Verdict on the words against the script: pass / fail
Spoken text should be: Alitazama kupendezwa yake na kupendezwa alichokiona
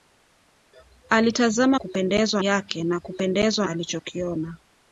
pass